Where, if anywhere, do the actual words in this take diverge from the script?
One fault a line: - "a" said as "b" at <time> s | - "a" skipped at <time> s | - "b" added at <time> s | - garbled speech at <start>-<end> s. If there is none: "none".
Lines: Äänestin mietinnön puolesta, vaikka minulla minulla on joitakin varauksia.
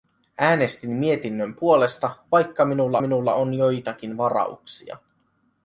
none